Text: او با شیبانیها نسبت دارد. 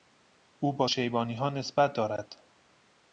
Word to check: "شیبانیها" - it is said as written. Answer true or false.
true